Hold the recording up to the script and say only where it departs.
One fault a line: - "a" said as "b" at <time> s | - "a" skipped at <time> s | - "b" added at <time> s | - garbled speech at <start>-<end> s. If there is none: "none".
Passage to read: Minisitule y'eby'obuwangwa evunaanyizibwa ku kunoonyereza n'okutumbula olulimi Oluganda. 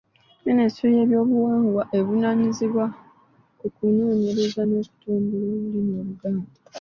none